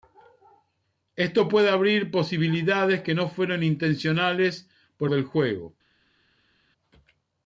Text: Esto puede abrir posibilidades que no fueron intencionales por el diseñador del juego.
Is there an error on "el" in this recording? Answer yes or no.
yes